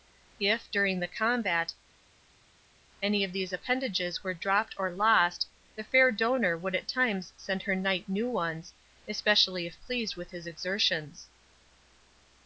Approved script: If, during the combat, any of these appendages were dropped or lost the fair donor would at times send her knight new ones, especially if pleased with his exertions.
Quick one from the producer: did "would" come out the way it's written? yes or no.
yes